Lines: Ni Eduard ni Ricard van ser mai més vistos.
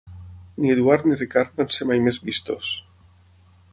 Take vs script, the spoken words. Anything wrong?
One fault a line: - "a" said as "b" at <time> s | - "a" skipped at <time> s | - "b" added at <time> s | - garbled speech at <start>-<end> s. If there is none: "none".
none